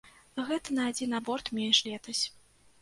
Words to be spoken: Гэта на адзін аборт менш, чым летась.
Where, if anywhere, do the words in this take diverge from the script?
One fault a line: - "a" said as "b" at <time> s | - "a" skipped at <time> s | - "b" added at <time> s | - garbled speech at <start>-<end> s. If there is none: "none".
- "чым" skipped at 1.8 s